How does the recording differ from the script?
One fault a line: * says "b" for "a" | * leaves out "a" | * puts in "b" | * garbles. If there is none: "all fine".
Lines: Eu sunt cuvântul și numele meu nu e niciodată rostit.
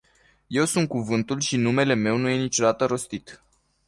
all fine